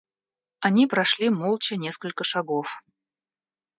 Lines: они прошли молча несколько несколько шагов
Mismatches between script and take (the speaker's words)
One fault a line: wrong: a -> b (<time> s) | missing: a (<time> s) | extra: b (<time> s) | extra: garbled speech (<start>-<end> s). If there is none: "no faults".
missing: несколько (2.2 s)